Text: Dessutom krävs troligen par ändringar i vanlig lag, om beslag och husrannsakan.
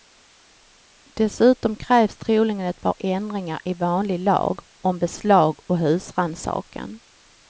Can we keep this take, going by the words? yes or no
no